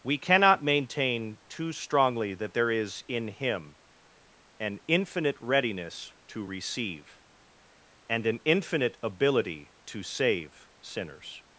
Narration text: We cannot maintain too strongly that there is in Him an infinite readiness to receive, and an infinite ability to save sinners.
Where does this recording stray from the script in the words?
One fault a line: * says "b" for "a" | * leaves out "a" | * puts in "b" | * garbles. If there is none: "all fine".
all fine